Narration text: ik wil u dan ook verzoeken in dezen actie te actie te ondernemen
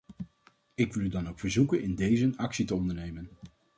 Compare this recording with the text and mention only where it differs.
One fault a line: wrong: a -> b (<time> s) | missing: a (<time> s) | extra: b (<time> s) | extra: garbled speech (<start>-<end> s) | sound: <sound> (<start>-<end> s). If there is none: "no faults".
missing: actie te (2.8 s)